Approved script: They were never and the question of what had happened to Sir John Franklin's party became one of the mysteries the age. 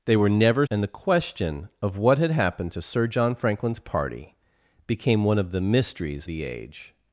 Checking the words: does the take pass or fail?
pass